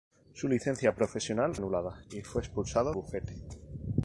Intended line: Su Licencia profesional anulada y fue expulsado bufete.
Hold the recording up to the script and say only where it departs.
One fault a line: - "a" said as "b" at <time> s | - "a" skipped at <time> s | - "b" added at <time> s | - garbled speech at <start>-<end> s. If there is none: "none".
none